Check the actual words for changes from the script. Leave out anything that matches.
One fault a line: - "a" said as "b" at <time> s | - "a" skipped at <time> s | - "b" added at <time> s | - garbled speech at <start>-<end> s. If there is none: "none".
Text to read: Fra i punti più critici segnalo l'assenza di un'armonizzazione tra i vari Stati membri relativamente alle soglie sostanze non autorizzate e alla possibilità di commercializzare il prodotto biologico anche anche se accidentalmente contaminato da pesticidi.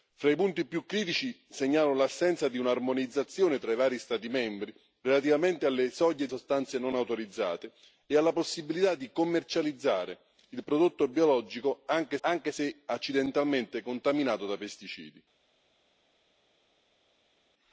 none